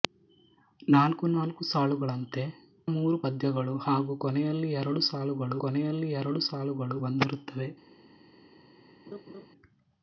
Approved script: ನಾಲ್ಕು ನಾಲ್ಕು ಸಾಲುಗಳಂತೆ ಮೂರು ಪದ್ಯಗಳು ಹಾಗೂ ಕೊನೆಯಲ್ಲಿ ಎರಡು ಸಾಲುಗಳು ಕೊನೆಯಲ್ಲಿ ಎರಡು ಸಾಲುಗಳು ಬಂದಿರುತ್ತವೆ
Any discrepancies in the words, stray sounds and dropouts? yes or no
yes